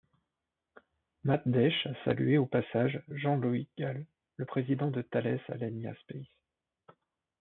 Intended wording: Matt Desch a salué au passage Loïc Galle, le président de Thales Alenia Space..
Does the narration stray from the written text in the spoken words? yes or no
yes